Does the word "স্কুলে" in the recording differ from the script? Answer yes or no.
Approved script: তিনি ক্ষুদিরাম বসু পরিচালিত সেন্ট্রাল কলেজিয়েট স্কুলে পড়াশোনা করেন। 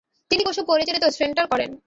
yes